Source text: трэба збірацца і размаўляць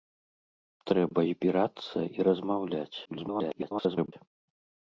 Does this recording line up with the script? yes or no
no